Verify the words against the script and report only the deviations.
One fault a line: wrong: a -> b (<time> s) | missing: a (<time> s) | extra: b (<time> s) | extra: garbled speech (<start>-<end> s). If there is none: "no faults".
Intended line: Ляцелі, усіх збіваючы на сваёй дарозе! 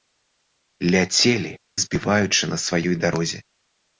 missing: усіх (1.5 s)